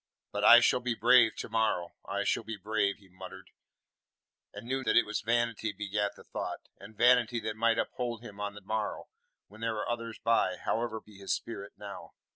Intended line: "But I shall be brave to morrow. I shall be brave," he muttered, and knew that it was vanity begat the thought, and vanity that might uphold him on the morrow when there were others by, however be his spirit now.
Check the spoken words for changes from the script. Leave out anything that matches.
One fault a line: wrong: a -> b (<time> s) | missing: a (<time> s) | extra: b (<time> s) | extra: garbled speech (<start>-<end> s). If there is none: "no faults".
no faults